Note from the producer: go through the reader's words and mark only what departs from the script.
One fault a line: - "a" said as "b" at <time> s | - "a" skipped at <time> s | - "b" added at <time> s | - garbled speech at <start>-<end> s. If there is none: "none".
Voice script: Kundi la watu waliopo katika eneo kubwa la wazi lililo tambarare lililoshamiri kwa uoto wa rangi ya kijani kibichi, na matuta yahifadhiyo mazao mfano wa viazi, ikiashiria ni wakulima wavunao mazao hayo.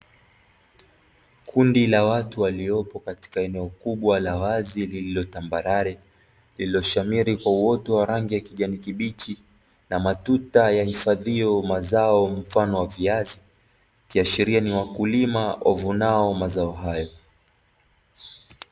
none